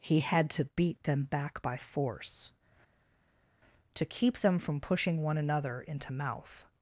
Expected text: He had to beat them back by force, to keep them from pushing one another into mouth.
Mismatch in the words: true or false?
false